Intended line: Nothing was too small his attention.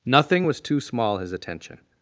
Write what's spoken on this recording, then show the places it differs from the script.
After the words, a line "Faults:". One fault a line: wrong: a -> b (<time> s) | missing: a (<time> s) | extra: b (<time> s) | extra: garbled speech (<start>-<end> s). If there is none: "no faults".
Nothing was too small his attention.
Faults:
no faults